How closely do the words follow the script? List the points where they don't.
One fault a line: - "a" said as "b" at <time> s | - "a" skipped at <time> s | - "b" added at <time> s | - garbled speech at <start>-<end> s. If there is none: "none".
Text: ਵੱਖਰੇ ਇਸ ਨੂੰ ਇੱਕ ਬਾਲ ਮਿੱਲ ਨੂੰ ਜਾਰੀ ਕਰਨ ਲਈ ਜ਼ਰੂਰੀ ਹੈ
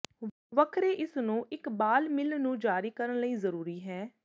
none